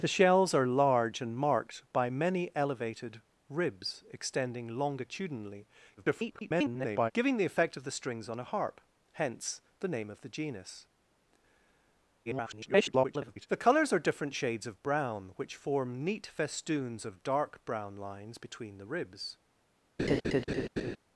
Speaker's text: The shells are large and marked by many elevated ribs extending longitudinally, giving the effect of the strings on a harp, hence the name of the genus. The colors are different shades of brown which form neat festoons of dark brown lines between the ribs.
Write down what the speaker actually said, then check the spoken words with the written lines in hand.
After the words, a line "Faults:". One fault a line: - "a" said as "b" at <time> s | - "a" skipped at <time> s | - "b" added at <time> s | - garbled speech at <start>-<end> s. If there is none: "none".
The shells are large and marked by many elevated ribs extending longitudinally, [garbled] giving the effect of the strings on a harp, hence the name of the genus. [garbled] The colors are different shades of brown which form neat festoons of dark brown lines between the ribs.
Faults:
- garbled speech at 6.0-7.1 s
- garbled speech at 12.3-13.5 s